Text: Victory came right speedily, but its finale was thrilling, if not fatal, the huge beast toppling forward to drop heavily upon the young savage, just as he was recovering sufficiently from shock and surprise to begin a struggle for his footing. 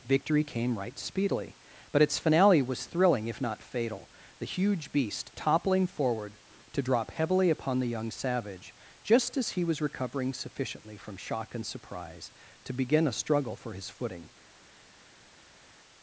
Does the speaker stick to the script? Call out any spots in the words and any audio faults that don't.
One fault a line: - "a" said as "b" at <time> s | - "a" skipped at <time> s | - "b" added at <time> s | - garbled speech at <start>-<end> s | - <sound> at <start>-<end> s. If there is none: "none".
none